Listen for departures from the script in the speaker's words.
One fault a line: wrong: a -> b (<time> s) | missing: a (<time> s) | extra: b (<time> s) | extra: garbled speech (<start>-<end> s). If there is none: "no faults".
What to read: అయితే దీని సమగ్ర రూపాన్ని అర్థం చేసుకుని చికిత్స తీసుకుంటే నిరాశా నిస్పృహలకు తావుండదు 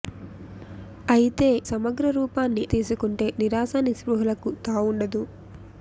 missing: దీని (1.5 s)
missing: అర్థం చేసుకుని చికిత్స (2.6 s)